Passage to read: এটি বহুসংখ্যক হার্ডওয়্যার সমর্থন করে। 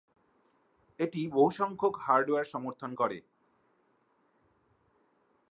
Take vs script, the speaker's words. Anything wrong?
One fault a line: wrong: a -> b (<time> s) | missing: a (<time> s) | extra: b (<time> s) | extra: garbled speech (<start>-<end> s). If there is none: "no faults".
no faults